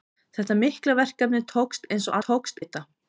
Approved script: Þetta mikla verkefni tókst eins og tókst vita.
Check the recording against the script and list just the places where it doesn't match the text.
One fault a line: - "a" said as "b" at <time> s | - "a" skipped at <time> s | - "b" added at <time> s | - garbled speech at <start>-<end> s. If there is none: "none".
none